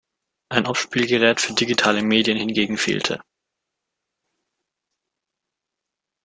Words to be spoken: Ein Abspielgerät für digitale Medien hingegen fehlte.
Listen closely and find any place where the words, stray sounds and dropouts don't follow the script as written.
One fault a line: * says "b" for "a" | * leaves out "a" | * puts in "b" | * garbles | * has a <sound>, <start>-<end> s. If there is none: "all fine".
all fine